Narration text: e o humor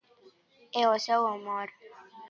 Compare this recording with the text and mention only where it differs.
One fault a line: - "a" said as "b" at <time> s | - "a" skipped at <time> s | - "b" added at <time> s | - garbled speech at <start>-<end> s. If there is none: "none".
- "seu" added at 1.0 s